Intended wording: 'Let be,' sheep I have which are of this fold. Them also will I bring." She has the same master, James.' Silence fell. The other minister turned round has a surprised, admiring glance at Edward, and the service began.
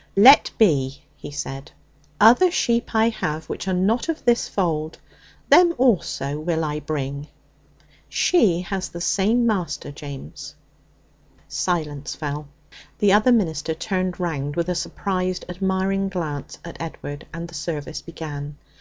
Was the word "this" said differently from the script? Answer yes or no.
no